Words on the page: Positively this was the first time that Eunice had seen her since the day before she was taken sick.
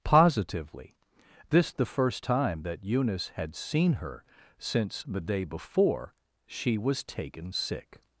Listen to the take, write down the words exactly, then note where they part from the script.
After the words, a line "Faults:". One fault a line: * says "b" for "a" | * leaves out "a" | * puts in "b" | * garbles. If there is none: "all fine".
Positively this the first time that Eunice had seen her since the day before she was taken sick.
Faults:
* leaves out "was"